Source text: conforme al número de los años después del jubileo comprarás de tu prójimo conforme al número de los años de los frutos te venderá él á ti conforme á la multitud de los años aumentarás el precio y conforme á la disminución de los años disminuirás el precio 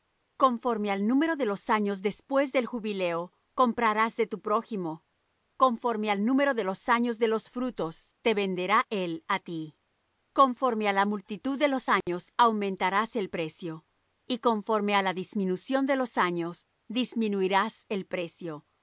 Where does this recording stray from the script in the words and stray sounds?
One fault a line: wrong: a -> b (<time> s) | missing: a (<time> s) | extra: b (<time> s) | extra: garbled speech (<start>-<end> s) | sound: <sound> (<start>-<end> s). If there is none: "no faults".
sound: dropout (12.0-12.1 s)